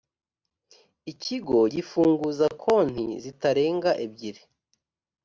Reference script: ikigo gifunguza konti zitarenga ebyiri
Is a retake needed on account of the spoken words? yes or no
no